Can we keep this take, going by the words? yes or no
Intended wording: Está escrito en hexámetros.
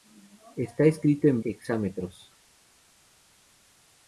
yes